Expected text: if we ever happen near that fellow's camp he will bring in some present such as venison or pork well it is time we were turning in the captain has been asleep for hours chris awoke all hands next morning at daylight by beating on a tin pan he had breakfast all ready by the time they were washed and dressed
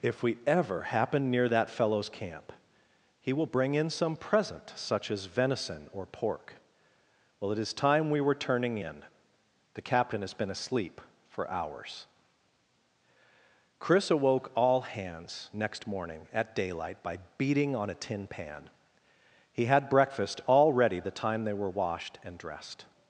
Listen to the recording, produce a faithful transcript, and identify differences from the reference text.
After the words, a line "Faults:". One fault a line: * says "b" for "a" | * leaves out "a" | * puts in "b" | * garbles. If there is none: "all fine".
if we ever happen near that fellow's camp he will bring in some present such as venison or pork well it is time we were turning in the captain has been asleep for hours chris awoke all hands next morning at daylight by beating on a tin pan he had breakfast all ready the time they were washed and dressed
Faults:
* leaves out "by"